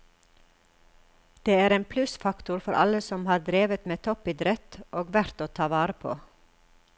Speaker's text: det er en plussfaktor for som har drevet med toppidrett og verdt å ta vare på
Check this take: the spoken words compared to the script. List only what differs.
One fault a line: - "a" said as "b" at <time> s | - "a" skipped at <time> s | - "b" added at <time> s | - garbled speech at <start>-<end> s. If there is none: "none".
- "alle" added at 2.9 s